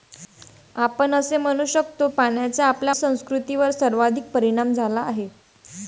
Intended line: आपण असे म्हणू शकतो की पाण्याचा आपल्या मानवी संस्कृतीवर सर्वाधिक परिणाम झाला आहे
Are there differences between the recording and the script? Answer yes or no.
yes